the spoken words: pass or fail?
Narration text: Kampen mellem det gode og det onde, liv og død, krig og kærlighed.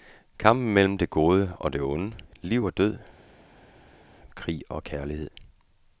pass